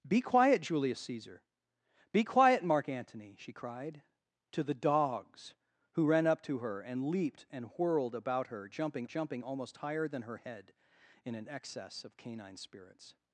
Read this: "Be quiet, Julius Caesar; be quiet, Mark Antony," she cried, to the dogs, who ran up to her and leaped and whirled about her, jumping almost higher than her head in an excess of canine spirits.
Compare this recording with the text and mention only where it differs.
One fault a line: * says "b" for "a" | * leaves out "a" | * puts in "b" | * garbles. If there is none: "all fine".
* puts in "jumping"